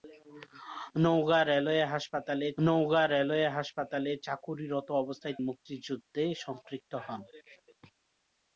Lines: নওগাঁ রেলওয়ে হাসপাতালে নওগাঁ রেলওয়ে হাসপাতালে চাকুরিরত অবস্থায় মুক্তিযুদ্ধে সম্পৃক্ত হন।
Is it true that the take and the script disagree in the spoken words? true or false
false